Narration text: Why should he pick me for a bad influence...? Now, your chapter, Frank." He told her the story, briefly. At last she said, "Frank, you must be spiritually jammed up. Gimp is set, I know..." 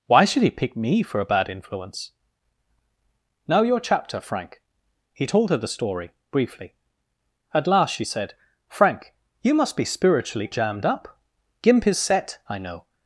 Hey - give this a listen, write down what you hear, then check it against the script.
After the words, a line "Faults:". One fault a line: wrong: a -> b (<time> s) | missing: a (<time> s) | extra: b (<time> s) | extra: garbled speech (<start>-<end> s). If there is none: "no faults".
Why should he pick me for a bad influence...? Now, your chapter, Frank." He told her the story, briefly. At last she said, "Frank, you must be spiritually jammed up. Gimp is set, I know..."
Faults:
no faults